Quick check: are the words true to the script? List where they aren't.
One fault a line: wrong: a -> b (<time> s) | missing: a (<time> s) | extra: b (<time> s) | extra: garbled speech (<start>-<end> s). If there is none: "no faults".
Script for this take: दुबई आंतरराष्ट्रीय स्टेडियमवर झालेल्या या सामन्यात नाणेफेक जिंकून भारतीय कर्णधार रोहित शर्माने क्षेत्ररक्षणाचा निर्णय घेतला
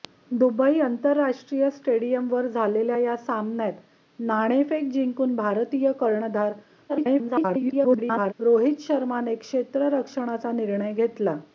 extra: garbled speech (6.9-8.3 s)